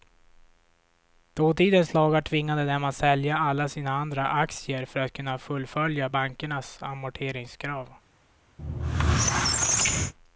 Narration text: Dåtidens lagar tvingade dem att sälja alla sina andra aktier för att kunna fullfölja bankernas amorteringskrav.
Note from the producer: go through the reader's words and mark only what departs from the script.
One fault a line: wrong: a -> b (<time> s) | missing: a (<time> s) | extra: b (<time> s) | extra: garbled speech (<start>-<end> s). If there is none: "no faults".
no faults